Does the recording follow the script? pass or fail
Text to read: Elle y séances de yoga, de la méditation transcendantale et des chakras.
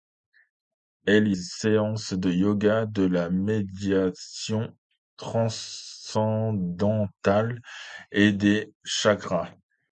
pass